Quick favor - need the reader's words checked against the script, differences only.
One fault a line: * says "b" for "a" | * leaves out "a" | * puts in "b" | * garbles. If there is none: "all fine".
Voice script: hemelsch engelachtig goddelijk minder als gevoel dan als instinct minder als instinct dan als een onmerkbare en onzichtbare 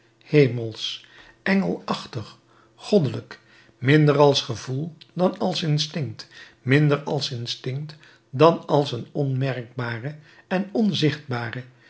all fine